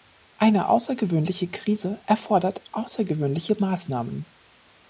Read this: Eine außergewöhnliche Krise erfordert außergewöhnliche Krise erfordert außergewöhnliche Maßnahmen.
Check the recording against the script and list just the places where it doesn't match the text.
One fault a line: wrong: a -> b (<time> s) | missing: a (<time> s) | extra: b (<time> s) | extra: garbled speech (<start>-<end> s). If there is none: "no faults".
missing: Krise erfordert außergewöhnliche (3.6 s)